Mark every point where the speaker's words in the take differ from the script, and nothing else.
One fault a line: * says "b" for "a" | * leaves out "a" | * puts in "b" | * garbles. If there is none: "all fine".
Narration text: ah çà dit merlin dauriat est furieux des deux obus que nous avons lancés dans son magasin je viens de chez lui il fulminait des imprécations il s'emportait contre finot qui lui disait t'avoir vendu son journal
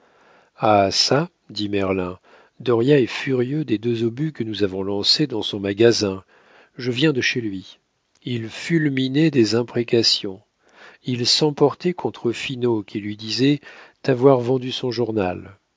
all fine